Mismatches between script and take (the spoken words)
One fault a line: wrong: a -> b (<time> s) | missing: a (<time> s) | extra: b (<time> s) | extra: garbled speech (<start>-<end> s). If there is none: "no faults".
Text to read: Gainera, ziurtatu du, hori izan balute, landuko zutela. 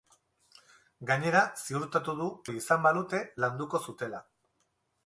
no faults